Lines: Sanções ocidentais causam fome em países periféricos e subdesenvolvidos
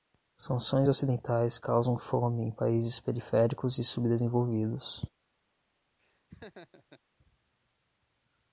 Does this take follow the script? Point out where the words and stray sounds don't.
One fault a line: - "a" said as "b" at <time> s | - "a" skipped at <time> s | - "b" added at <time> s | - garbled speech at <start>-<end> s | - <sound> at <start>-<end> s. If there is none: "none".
- laugh at 6.0-7.0 s